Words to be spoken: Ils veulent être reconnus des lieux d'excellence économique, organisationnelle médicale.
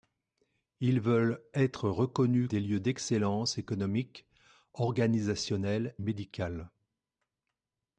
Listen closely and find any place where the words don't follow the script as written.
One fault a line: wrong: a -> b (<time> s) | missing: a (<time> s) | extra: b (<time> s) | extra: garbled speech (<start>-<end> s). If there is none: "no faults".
no faults